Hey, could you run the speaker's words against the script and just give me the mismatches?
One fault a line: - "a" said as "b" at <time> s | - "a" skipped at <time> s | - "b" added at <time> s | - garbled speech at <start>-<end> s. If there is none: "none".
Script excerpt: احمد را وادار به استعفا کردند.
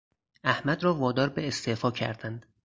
none